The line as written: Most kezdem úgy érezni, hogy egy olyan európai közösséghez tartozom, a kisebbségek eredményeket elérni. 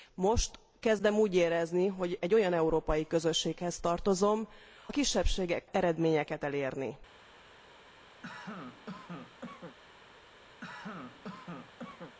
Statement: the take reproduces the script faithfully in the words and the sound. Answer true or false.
false